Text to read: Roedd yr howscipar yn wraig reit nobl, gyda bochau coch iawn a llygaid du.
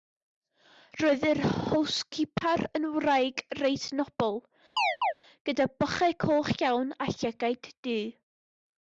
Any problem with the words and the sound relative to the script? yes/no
yes